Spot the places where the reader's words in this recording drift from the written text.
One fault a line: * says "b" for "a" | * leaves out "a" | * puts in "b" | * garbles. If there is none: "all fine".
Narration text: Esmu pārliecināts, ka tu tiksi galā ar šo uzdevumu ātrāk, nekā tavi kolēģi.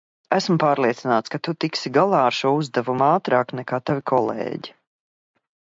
all fine